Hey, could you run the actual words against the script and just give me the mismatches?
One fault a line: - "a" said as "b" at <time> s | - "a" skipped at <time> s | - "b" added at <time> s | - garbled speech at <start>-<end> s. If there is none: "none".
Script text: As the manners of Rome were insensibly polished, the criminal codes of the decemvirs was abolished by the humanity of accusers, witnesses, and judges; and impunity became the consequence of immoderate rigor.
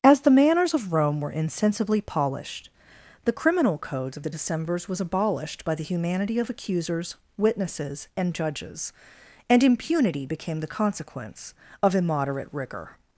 none